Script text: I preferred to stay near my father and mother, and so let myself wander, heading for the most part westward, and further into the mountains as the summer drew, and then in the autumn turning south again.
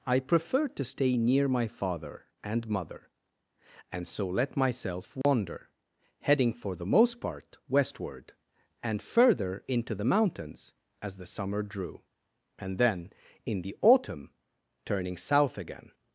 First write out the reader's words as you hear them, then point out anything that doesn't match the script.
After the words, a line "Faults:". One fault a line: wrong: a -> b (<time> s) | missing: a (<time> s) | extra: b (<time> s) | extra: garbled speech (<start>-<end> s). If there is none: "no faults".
I preferred to stay near my father and mother, and so let myself wander, heading for the most part westward, and further into the mountains as the summer drew, and then in the autumn turning south again.
Faults:
no faults